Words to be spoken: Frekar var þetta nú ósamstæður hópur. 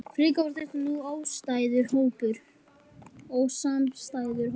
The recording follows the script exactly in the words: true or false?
true